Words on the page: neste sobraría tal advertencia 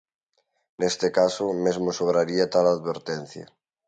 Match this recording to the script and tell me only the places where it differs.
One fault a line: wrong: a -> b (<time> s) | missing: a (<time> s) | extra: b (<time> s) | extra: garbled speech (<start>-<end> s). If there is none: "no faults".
extra: caso mesmo (1.2 s)